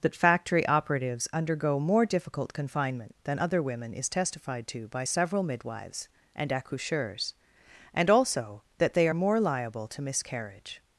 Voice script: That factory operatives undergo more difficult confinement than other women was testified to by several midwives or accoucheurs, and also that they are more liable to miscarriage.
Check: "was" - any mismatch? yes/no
yes